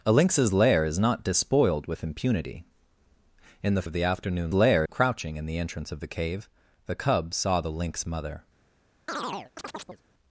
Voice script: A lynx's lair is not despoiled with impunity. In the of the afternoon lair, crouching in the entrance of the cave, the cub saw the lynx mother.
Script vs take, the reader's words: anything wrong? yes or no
no